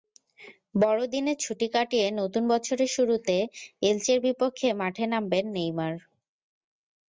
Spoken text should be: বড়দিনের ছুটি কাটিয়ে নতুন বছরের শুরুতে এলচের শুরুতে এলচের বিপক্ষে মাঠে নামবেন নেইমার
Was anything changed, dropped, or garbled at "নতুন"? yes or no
no